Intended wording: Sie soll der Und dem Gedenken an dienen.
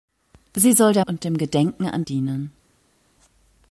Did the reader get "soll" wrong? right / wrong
right